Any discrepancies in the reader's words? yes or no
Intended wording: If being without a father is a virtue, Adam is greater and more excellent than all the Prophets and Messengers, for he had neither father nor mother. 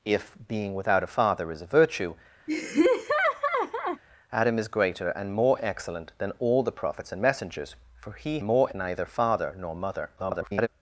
yes